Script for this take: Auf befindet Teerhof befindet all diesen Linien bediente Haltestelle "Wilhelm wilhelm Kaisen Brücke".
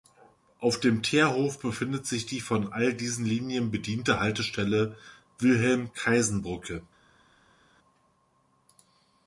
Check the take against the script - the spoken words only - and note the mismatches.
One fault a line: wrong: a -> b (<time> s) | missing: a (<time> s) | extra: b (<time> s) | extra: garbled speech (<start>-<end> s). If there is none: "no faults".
wrong: befindet -> dem (0.8 s)
extra: sich die von (2.1 s)
missing: wilhelm (5.9 s)